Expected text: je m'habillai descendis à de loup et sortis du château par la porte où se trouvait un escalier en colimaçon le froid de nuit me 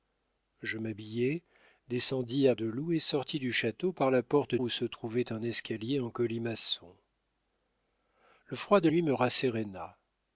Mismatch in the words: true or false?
false